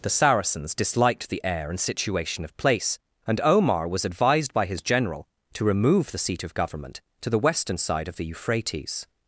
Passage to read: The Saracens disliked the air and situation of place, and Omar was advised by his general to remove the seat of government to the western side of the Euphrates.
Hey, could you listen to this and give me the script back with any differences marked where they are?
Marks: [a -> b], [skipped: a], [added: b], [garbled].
The Saracens disliked the air and situation of place, and Omar was advised by his general to remove the seat of government to the western side of the Euphrates.